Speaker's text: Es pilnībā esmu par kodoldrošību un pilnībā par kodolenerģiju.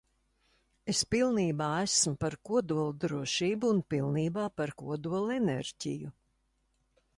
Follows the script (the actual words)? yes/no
yes